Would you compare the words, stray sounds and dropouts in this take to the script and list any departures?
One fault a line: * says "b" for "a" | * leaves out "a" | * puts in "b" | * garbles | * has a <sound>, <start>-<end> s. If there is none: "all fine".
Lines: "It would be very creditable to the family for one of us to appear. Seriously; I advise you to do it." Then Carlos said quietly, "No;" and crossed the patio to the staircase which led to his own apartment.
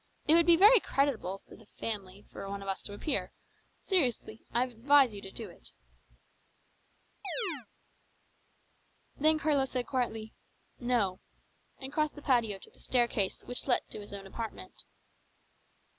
* has a chirp, 7.2-7.7 s